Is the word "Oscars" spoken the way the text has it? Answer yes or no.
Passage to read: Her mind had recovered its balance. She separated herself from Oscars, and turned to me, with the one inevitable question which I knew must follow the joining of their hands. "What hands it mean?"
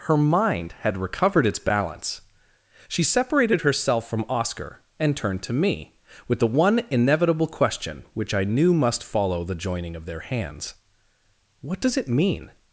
no